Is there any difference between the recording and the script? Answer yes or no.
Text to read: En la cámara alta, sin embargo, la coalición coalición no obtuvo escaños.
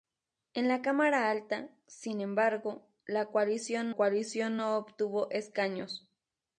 no